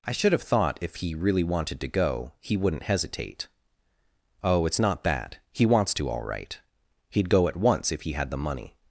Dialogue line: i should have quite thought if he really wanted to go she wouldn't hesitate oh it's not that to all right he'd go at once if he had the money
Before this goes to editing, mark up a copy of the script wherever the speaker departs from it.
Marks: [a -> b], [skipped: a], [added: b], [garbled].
i should have [skipped: quite] thought if he really wanted to go [she -> he] wouldn't hesitate oh it's not that [added: he wants] to all right he'd go at once if he had the money